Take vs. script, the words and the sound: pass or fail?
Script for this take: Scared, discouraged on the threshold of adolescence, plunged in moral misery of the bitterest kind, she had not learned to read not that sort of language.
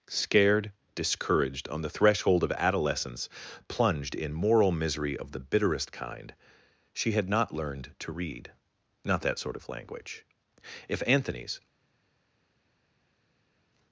fail